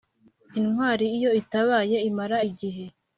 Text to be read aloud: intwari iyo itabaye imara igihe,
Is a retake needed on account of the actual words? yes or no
no